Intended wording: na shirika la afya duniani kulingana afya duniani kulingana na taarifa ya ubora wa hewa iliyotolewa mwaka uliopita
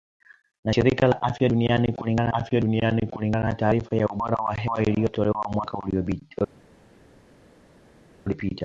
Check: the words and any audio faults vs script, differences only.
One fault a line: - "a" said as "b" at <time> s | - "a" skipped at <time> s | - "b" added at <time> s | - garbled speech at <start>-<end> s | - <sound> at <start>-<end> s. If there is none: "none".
none